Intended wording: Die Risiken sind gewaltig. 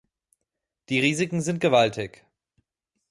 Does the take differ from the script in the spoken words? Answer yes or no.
no